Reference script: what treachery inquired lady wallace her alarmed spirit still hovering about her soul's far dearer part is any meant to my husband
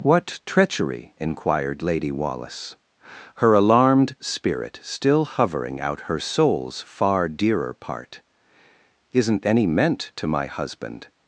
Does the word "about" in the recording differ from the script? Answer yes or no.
yes